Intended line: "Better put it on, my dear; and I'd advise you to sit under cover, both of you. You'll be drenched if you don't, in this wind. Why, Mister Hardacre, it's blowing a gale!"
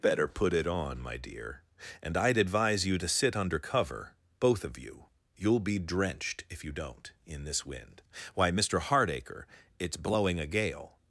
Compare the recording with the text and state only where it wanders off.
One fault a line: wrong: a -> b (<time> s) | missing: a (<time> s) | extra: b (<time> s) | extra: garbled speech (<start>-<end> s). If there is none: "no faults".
no faults